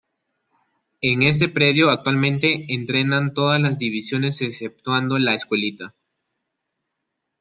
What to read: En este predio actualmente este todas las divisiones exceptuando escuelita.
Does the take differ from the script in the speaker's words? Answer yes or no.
yes